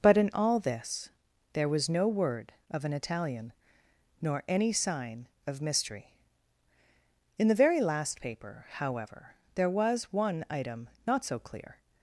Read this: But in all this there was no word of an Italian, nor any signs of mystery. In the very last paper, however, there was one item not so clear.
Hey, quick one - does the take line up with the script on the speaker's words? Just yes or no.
no